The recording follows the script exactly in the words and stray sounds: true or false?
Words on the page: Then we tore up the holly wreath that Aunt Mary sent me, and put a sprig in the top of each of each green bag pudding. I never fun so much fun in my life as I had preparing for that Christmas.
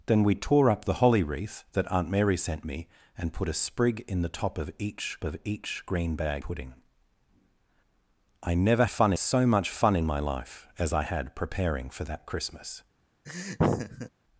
false